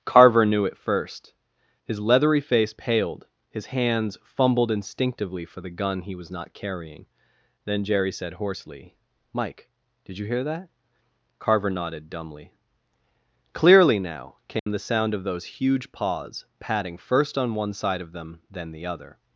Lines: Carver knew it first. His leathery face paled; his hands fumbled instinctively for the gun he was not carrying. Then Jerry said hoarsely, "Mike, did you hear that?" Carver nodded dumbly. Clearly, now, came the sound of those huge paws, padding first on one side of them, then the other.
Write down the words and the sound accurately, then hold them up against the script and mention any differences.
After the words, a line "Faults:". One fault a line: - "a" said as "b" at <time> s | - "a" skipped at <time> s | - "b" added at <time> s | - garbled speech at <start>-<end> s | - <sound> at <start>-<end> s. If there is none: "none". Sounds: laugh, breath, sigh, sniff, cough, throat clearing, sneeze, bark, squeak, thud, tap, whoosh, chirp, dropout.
Carver knew it first. His leathery face paled; his hands fumbled instinctively for the gun he was not carrying. Then Jerry said hoarsely, "Mike, did you hear that?" Carver nodded dumbly. Clearly, now, came the sound of those huge paws, padding first on one side of them, then the other.
Faults:
- dropout at 14.6-14.7 s